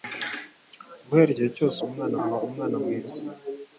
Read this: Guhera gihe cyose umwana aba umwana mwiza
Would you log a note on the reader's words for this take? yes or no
no